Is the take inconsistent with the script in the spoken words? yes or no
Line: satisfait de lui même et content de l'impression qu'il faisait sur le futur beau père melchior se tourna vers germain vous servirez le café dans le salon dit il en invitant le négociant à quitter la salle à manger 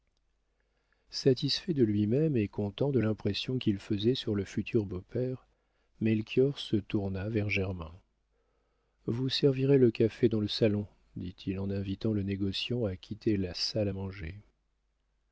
no